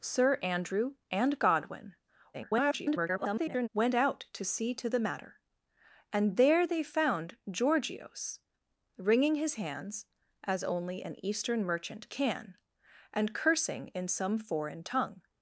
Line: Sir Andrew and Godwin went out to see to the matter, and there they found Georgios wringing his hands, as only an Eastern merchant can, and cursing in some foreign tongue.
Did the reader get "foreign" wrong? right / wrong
right